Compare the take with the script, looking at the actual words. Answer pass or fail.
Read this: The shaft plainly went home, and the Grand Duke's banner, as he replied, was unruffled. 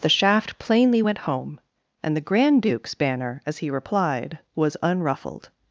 pass